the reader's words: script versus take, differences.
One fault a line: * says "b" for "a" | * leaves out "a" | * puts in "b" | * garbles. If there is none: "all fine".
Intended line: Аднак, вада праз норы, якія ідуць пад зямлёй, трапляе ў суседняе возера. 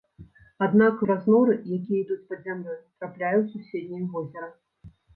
* leaves out "вада"